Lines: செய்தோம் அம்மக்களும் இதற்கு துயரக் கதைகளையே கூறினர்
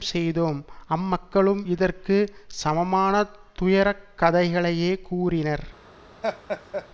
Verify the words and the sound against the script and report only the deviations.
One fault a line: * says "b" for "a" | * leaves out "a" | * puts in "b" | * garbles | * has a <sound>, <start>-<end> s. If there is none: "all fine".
* puts in "சமமான"
* has a laugh, 6.2-6.9 s